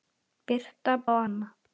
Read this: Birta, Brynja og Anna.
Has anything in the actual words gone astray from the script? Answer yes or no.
yes